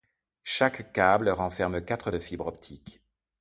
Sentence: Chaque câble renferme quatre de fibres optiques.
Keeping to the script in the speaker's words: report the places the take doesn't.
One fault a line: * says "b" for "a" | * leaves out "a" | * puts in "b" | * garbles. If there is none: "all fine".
all fine